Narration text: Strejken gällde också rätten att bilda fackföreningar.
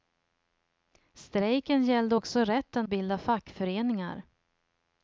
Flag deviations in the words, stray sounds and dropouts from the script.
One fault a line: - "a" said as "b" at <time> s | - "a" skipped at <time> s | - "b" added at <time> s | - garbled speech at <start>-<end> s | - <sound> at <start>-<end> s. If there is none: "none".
- "att" skipped at 2.9 s